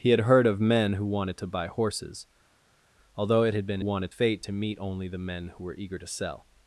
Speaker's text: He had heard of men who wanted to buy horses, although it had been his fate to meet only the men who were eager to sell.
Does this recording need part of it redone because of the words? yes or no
yes